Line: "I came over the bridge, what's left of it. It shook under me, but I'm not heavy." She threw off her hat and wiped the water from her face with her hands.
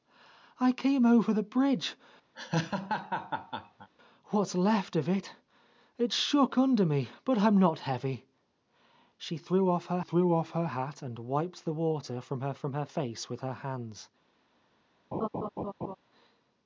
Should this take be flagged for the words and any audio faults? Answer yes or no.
yes